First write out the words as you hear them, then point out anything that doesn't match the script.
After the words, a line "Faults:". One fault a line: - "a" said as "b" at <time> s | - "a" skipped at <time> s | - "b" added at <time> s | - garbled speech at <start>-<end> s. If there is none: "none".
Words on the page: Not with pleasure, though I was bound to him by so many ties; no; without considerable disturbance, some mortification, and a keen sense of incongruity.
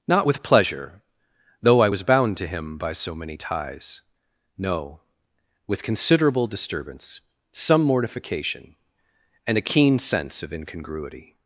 Not with pleasure, though I was bound to him by so many ties; no; with considerable disturbance, some mortification, and a keen sense of incongruity.
Faults:
- "without" said as "with" at 5.7 s